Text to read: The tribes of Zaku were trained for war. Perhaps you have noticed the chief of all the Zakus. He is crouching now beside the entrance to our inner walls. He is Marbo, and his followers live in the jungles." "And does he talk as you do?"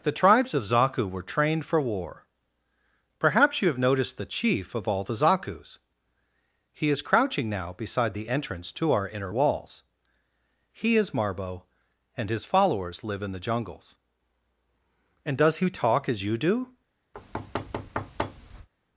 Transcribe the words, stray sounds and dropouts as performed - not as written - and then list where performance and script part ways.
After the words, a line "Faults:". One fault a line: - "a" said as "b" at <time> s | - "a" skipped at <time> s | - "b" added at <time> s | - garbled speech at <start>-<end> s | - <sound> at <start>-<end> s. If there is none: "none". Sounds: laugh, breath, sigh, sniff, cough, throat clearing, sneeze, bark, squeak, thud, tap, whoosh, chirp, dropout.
The tribes of Zaku were trained for war. Perhaps you have noticed the chief of all the Zakus. He is crouching now beside the entrance to our inner walls. He is Marbo, and his followers live in the jungles." "And does he talk as you do?"
Faults:
- thud at 17.1-18.7 s